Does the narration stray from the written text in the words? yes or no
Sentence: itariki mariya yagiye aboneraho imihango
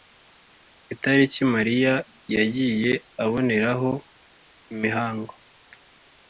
no